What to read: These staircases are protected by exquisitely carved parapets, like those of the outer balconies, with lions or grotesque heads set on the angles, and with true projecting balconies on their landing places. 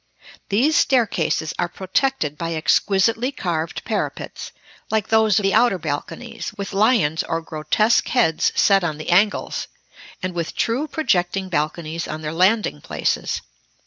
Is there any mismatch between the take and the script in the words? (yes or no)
yes